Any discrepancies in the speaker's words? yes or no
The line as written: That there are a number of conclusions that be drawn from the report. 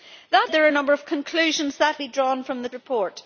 no